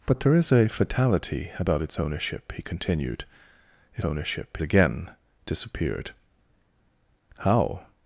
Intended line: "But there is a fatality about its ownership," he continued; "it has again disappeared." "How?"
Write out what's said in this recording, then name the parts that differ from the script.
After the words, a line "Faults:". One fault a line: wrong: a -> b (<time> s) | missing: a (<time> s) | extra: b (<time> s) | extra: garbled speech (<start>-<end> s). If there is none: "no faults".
"But there is a fatality about its ownership," he continued; "it ownership again disappeared." "How?"
Faults:
wrong: has -> ownership (4.0 s)